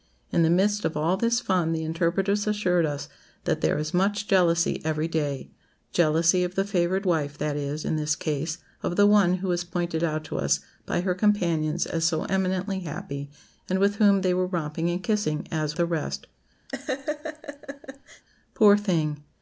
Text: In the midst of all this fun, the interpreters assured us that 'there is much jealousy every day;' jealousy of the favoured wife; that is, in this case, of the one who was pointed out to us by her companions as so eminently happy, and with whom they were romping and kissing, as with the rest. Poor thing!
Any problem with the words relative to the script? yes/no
yes